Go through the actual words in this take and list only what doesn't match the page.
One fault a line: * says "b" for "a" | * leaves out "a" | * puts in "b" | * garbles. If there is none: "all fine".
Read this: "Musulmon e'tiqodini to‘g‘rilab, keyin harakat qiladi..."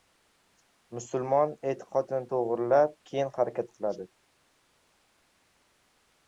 all fine